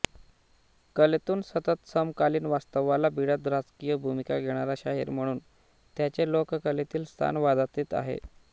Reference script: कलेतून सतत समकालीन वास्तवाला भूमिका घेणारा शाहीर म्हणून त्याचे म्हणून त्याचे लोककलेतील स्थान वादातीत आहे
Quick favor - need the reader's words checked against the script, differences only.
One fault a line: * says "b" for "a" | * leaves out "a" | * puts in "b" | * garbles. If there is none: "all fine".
* puts in "भिडत राजकीय"
* leaves out "म्हणून त्याचे"